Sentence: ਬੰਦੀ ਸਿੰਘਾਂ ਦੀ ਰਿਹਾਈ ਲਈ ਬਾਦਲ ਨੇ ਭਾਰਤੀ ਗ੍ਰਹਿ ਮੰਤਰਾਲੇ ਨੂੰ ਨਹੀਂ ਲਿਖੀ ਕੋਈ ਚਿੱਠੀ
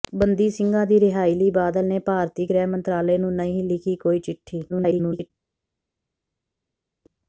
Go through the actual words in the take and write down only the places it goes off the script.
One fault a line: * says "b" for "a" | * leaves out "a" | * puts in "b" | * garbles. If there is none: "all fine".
* garbles